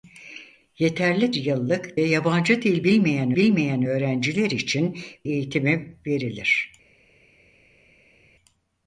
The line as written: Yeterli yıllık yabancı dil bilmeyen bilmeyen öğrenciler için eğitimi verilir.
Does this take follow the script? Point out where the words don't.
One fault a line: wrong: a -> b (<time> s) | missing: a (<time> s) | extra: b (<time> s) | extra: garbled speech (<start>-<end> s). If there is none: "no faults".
no faults